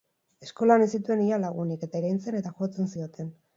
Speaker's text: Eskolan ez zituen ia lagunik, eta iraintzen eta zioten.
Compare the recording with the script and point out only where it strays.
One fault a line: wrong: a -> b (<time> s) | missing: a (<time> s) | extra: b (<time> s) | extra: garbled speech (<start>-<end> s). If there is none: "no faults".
extra: jotzen (2.6 s)